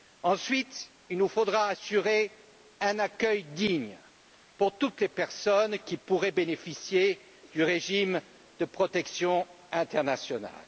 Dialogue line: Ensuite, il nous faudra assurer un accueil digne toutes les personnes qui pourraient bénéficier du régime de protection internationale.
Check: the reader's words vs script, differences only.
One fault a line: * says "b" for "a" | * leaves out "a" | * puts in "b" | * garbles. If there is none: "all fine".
* puts in "pour"